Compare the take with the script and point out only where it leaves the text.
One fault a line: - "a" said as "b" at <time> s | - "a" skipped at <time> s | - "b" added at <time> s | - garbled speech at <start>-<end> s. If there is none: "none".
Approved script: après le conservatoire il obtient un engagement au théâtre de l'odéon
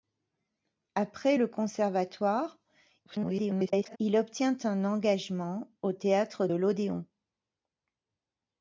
- garbled speech at 3.1-4.0 s
- "de" skipped at 6.5 s